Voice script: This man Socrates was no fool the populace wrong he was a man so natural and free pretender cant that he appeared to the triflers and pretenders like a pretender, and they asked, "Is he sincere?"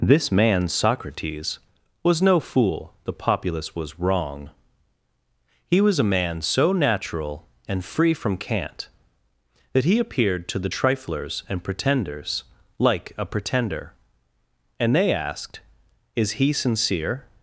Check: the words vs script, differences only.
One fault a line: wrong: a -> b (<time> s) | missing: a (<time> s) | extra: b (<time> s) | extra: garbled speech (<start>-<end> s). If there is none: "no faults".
extra: was (3.8 s)
wrong: pretender -> from (8.1 s)